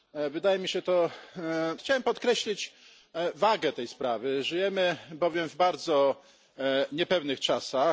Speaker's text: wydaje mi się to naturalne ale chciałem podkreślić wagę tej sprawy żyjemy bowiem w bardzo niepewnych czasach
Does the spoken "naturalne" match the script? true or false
false